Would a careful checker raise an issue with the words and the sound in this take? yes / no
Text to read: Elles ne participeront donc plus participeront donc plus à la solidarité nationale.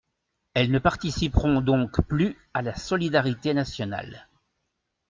yes